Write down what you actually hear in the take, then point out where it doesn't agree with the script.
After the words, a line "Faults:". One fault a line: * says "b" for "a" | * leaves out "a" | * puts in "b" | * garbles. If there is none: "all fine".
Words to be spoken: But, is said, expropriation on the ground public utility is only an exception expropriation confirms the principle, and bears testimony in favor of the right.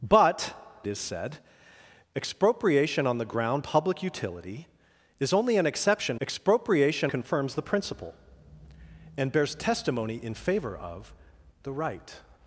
But, is said, expropriation on the ground public utility is only an exception expropriation confirms the principle, and bears testimony in favor of the right.
Faults:
all fine